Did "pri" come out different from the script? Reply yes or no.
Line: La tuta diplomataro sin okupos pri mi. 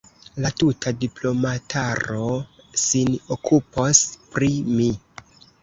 no